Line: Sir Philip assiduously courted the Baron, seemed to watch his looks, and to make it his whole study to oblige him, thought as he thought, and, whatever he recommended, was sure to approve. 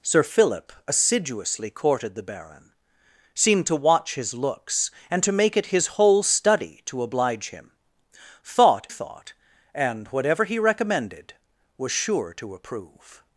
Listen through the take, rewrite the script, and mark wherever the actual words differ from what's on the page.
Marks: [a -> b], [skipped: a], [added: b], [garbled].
Sir Philip assiduously courted the Baron, seemed to watch his looks, and to make it his whole study to oblige him, thought [skipped: as he] thought, and, whatever he recommended, was sure to approve.